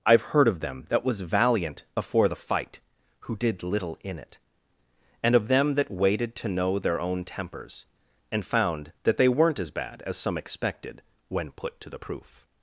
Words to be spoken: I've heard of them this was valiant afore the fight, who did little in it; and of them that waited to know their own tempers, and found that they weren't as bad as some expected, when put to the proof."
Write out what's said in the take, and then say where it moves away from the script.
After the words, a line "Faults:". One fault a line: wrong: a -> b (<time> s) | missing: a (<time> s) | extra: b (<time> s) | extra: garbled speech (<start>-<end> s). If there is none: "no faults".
I've heard of them that was valiant afore the fight, who did little in it; and of them that waited to know their own tempers, and found that they weren't as bad as some expected, when put to the proof."
Faults:
wrong: this -> that (0.9 s)